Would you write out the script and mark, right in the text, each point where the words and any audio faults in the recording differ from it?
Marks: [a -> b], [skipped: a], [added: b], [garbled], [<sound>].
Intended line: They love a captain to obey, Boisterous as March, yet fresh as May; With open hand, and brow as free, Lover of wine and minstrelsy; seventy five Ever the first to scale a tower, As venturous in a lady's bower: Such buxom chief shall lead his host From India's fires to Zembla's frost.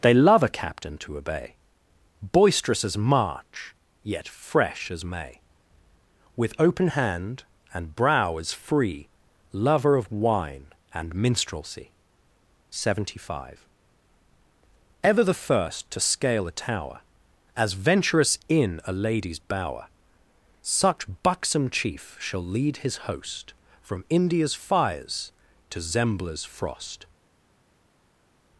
They love a captain to obey, Boisterous as March, yet fresh as May; With open hand, and brow as free, Lover of wine and minstrelsy; seventy five Ever the first to scale a tower, As venturous in a lady's bower: Such buxom chief shall lead his host From India's fires to Zembla's frost.